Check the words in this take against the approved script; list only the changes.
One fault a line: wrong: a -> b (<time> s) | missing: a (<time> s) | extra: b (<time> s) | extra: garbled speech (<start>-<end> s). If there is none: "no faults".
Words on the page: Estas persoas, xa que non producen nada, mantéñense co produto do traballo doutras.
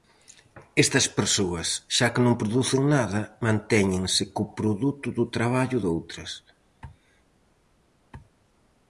no faults